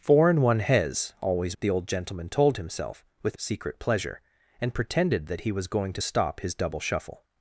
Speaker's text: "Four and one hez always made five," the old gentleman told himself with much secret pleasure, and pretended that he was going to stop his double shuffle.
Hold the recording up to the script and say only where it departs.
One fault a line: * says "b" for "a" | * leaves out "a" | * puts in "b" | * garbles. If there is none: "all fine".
* leaves out "made five"
* leaves out "much"